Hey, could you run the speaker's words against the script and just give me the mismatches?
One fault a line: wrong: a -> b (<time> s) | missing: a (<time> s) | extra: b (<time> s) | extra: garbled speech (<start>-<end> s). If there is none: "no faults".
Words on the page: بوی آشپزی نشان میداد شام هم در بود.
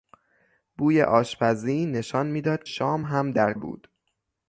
no faults